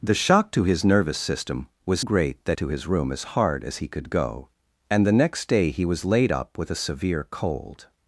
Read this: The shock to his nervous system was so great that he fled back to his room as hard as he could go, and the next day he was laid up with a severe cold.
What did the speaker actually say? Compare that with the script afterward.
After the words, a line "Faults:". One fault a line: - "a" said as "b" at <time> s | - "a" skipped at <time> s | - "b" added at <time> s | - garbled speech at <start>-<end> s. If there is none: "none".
The shock to his nervous system was great that to his room as hard as he could go, and the next day he was laid up with a severe cold.
Faults:
- "so" skipped at 2.0 s
- "he fled back" skipped at 2.6 s